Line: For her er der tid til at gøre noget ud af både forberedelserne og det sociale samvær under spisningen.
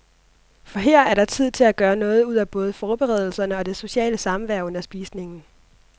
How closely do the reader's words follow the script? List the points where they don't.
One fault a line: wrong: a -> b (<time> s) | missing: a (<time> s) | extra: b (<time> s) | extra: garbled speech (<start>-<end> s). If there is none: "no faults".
no faults